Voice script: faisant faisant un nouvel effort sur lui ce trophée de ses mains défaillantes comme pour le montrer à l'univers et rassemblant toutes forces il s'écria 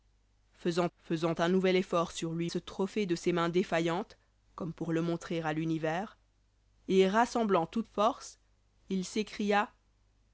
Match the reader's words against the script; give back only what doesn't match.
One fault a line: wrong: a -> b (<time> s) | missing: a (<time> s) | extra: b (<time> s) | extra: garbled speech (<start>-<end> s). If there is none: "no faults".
no faults